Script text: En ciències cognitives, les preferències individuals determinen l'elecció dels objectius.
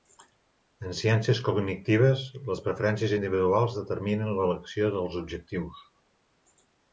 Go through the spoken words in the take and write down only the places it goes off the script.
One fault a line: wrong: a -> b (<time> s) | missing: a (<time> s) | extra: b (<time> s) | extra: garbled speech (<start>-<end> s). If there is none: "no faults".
no faults